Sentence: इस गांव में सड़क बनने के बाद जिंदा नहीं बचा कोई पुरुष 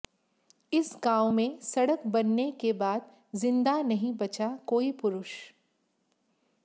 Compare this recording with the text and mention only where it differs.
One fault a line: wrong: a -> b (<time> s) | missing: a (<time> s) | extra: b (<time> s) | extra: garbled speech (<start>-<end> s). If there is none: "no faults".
no faults